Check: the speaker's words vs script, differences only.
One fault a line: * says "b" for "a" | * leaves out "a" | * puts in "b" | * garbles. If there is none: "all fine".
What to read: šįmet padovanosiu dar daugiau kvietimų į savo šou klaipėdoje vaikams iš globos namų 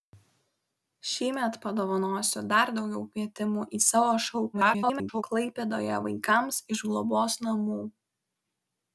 * garbles